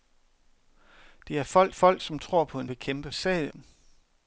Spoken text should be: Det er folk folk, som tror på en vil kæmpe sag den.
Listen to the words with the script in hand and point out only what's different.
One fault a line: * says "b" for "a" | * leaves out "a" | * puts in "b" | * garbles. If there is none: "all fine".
all fine